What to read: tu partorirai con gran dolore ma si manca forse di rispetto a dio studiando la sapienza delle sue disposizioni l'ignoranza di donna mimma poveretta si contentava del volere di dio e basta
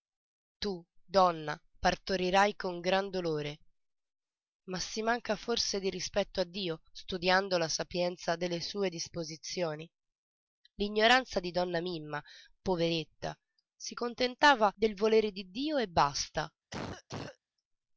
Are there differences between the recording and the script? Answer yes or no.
yes